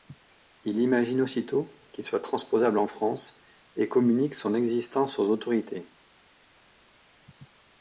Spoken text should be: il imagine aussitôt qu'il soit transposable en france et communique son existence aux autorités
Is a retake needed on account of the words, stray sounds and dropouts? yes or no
no